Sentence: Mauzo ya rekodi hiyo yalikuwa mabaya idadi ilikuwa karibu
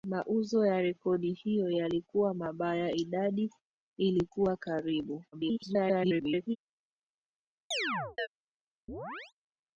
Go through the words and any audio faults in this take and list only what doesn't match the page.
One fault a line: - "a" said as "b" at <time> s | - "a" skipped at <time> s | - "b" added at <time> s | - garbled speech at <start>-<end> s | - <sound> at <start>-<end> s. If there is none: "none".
- garbled speech at 5.3-6.6 s
- chirp at 7.7-8.3 s
- chirp at 8.9-9.3 s